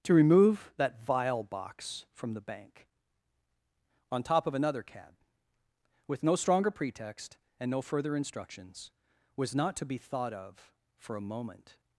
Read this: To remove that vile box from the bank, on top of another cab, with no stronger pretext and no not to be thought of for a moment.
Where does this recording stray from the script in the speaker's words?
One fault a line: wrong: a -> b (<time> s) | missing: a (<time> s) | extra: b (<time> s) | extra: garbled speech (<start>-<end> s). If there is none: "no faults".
extra: further instructions was (7.8 s)